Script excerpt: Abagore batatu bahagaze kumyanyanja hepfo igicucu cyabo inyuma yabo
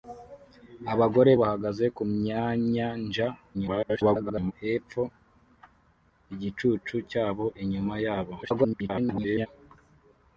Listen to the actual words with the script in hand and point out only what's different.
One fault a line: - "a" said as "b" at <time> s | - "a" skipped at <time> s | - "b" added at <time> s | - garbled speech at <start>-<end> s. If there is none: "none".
- "batatu" skipped at 1.3 s
- garbled speech at 3.5-4.5 s
- garbled speech at 8.4-9.5 s